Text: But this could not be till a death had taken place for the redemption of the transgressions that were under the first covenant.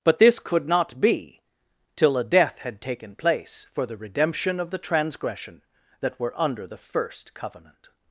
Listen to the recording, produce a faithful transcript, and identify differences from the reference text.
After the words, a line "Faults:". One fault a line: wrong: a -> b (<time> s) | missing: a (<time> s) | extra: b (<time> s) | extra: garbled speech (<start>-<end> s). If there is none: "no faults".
But this could not be till a death had taken place for the redemption of the transgression that were under the first covenant.
Faults:
wrong: transgressions -> transgression (4.8 s)